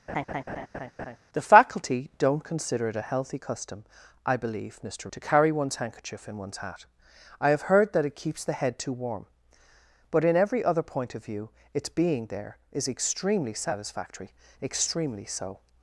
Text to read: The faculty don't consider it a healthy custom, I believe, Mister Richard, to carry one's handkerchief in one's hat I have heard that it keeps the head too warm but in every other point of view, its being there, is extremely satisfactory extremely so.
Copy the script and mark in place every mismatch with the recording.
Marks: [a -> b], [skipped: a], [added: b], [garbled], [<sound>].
[laugh] The faculty don't consider it a healthy custom, I believe, Mister [skipped: Richard,] to carry one's handkerchief in one's hat I have heard that it keeps the head too warm but in every other point of view, its being there, is extremely satisfactory extremely so.